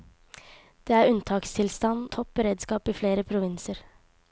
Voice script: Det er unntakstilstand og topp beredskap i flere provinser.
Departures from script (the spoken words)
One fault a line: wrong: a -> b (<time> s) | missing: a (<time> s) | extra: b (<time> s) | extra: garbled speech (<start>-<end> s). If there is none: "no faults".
missing: og (2.1 s)